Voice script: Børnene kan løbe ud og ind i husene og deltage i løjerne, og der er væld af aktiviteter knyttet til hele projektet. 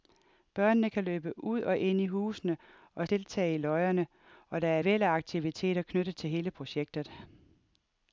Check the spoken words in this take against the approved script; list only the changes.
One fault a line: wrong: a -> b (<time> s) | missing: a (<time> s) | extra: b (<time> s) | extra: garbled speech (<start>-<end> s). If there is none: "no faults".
no faults